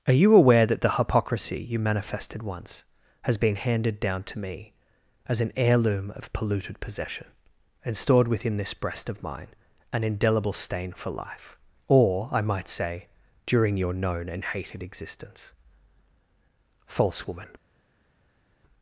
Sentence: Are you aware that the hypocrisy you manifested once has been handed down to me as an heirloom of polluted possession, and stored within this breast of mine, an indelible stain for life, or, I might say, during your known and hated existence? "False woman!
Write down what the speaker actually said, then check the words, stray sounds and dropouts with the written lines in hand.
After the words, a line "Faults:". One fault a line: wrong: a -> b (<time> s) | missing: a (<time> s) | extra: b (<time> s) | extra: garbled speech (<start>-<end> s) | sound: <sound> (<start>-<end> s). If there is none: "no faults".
Are you aware that the hypocrisy you manifested once has been handed down to me as an heirloom of polluted possession, and stored within this breast of mine, an indelible stain for life, or, I might say, during your known and hated existence? "False woman!
Faults:
no faults